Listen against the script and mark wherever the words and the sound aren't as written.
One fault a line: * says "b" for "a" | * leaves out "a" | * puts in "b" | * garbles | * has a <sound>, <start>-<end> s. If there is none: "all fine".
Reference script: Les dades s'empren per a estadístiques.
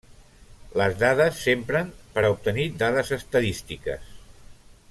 * puts in "obtenir dades"